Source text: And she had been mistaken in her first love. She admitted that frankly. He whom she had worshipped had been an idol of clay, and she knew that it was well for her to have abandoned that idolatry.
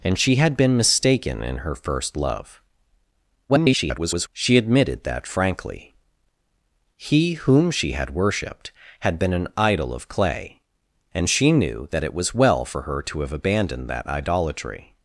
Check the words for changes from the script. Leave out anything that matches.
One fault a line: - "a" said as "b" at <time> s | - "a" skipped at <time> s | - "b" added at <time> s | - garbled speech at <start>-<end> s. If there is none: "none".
- garbled speech at 3.5-4.3 s